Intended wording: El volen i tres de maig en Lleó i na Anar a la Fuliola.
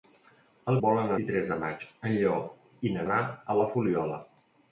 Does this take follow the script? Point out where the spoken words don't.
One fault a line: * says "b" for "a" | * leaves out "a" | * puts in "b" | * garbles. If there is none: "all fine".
all fine